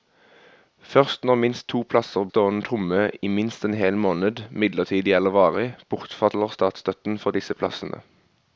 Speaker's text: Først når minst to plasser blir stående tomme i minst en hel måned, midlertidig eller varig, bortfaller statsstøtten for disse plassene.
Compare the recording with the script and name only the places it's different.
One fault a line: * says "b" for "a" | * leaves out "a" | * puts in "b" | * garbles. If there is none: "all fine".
* leaves out "blir"